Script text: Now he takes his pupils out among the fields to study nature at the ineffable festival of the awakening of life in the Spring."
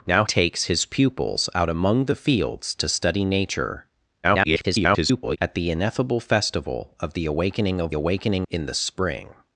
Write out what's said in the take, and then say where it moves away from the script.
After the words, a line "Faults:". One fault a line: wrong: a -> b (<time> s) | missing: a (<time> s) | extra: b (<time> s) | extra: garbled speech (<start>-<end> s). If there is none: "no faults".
Now takes his pupils out among the fields to study nature [garbled] at the ineffable festival of the awakening of awakening in the Spring."
Faults:
missing: he (0.2 s)
extra: garbled speech (4.2-5.4 s)
wrong: life -> awakening (7.9 s)